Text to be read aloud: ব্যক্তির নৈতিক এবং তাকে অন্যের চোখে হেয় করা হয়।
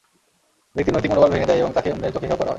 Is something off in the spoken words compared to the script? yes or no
yes